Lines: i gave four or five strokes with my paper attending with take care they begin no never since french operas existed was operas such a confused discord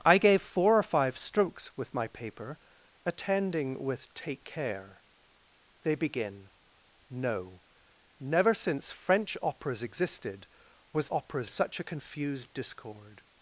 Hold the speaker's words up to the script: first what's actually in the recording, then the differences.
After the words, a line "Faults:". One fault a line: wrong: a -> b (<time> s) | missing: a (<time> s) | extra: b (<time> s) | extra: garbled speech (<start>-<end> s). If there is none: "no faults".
i gave four or five strokes with my paper attending with take care they begin no never since french operas existed was operas such a confused discord
Faults:
no faults